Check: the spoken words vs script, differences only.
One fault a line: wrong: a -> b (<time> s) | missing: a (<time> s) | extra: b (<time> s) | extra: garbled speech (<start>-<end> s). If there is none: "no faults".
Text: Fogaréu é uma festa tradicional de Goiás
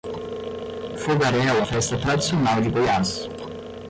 missing: uma (1.6 s)